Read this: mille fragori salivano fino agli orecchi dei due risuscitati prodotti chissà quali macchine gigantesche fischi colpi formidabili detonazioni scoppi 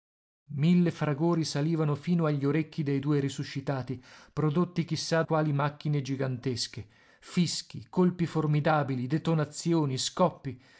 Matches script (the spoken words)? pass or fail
pass